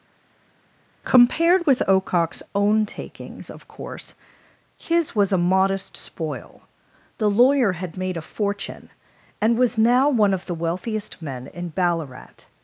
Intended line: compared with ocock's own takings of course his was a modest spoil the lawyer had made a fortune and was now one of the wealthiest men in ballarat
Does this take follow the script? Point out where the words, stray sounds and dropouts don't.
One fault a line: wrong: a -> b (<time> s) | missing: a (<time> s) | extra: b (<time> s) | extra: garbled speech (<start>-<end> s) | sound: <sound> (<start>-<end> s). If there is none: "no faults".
no faults